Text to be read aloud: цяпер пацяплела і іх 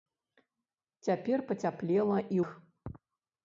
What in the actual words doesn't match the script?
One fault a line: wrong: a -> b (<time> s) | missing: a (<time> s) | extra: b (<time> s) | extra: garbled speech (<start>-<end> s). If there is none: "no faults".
no faults